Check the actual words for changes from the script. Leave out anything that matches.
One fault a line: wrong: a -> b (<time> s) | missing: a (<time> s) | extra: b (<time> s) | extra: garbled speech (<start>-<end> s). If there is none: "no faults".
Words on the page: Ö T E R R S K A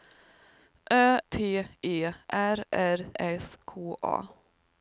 no faults